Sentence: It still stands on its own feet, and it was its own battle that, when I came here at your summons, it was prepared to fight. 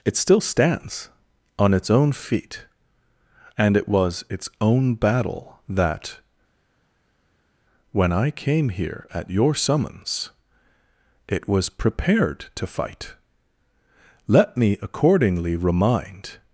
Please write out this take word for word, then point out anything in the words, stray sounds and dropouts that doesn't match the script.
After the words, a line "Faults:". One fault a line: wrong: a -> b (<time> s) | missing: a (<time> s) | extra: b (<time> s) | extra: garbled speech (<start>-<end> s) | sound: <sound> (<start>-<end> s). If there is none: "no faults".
It still stands on its own feet, and it was its own battle that, when I came here at your summons, it was prepared to fight. Let me accordingly remind
Faults:
extra: Let me accordingly remind (14.3 s)